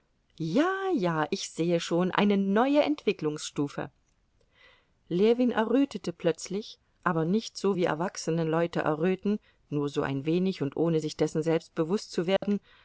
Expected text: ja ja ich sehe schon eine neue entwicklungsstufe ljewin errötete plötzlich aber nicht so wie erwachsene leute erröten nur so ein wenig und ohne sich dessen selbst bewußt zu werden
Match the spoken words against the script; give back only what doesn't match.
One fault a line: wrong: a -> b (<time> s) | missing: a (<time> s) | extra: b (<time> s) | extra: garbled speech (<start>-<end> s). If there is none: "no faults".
no faults